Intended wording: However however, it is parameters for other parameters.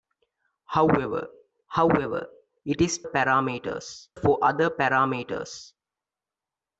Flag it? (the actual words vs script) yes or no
no